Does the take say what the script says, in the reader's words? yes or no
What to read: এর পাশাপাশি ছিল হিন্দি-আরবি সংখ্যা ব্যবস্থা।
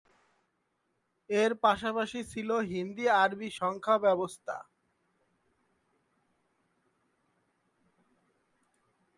yes